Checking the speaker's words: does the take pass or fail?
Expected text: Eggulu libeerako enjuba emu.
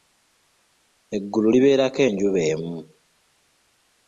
pass